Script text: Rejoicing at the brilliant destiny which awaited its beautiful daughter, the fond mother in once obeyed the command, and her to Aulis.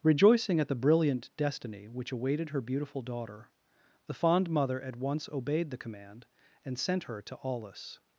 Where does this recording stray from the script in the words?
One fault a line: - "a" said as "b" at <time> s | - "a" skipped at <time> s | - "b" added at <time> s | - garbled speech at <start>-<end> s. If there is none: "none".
- "its" said as "her" at 2.5 s
- "in" said as "at" at 4.8 s
- "sent" added at 6.8 s